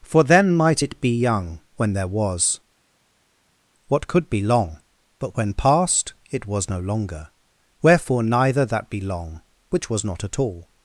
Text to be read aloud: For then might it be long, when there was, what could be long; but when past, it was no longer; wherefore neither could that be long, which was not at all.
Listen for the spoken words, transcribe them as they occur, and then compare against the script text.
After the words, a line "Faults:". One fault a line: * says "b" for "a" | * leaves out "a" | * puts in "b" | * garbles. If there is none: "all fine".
For then might it be young, when there was, what could be long; but when past, it was no longer; wherefore neither that be long, which was not at all.
Faults:
* says "young" for "long"
* leaves out "could"